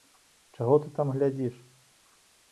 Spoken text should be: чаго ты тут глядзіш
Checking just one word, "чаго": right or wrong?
right